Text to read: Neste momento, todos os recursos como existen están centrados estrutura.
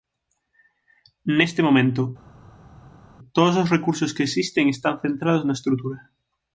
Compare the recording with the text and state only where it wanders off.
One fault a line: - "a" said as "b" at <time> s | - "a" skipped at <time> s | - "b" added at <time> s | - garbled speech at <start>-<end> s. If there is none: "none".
- "como" said as "que" at 4.2 s
- "na" added at 5.5 s